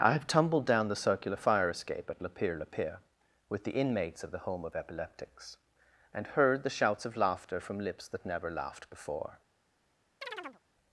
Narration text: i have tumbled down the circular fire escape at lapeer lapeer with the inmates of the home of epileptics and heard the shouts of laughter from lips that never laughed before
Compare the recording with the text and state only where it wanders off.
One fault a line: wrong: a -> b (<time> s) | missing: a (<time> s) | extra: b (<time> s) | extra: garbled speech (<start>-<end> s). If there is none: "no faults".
no faults